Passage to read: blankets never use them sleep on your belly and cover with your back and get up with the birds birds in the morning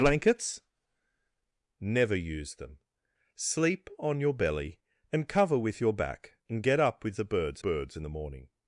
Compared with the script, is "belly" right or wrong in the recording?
right